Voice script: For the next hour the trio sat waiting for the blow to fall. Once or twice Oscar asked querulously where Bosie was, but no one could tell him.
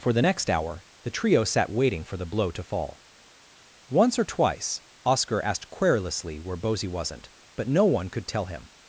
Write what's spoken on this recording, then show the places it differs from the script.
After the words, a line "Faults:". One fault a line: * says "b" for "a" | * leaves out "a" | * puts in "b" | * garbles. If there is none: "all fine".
For the next hour the trio sat waiting for the blow to fall. Once or twice Oscar asked querulously where Bosie wasn't, but no one could tell him.
Faults:
* says "wasn't" for "was"